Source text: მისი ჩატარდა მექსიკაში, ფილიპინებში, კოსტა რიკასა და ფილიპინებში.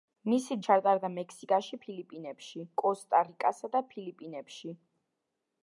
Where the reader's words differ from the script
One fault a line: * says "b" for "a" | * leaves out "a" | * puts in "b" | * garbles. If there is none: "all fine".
all fine